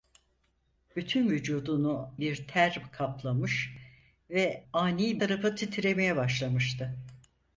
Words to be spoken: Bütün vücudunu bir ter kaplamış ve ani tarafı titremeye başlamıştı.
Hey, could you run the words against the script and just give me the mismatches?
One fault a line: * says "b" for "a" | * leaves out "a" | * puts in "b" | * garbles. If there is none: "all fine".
all fine